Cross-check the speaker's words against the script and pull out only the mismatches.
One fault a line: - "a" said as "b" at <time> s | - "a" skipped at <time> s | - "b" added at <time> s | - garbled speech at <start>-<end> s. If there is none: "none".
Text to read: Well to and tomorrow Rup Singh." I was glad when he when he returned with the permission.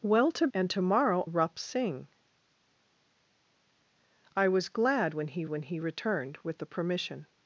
none